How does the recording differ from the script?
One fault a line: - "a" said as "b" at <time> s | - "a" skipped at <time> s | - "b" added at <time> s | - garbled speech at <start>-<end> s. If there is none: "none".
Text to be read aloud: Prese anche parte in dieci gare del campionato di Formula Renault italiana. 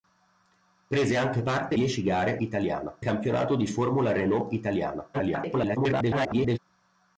- "in" skipped at 1.8 s
- "del" said as "italiana" at 2.4 s
- garbled speech at 5.1-6.6 s